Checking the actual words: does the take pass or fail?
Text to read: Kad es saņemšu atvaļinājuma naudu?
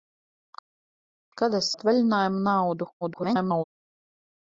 fail